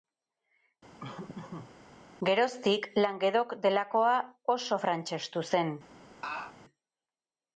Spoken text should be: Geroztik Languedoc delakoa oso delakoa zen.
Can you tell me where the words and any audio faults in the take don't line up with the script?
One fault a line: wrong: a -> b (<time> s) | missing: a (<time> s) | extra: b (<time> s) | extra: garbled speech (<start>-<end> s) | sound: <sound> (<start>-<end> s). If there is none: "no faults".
sound: laugh (1.0-1.7 s)
wrong: delakoa -> frantsestu (4.9 s)
sound: laugh (6.2-6.6 s)